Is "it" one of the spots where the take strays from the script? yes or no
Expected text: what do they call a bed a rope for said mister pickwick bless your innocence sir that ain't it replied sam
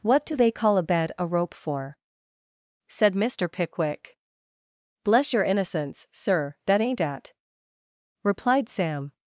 yes